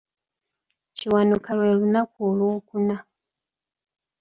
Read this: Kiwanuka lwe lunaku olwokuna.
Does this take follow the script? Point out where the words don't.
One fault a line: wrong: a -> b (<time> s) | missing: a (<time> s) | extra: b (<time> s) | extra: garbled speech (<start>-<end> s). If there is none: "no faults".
no faults